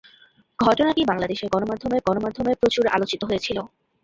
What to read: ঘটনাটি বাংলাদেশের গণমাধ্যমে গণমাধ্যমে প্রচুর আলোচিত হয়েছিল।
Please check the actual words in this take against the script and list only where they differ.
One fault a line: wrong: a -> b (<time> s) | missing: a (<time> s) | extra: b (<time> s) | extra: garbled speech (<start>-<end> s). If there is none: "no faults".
no faults